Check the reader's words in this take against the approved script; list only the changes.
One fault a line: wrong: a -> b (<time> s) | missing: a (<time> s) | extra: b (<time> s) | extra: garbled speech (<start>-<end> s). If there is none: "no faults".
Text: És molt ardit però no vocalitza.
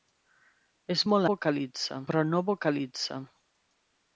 wrong: ardit -> vocalitza (1.3 s)